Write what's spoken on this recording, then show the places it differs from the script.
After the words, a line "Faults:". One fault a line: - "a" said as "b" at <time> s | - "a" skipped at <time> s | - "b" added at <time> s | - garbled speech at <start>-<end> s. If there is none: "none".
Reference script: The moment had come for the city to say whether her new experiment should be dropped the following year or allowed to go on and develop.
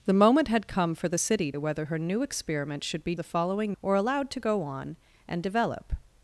The moment had come for the city whether her new experiment should be the following or allowed to go on and develop.
Faults:
- "to say" skipped at 1.5 s
- "dropped" skipped at 3.1 s
- "year" skipped at 3.7 s